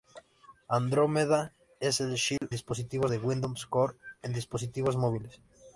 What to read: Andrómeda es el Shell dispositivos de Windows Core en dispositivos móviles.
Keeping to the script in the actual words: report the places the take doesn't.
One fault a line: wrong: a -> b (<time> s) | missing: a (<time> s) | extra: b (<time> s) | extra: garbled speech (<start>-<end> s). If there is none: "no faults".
no faults